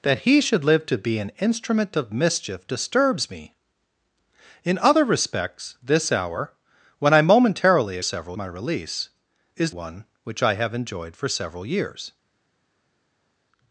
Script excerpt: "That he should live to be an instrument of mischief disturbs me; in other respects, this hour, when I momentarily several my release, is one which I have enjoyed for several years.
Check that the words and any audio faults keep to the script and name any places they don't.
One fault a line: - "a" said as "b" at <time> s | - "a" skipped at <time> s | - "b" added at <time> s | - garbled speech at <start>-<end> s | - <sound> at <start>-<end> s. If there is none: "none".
none